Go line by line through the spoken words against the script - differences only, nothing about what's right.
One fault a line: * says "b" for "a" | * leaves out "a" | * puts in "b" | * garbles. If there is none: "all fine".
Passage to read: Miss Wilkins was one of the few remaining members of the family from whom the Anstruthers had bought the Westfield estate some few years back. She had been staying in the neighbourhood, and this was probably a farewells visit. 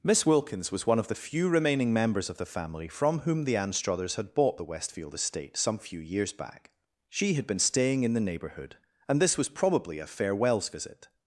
all fine